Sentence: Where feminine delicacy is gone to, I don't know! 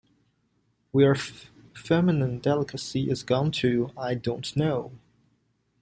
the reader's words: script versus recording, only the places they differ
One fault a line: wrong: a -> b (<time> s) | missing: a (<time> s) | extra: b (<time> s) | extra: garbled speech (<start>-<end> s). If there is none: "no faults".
no faults